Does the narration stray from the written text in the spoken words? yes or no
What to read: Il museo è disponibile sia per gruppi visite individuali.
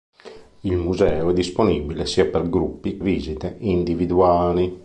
no